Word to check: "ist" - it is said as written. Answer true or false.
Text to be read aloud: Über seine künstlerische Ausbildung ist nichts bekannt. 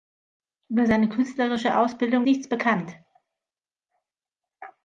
false